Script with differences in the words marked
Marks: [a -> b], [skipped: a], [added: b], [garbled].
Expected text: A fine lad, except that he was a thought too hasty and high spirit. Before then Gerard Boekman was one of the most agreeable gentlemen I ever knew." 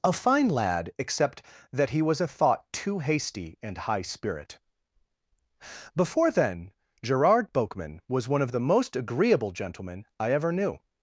A fine lad, except that he was a thought too hasty and high spirit. Before then Gerard Boekman was one of the most agreeable gentlemen I ever knew."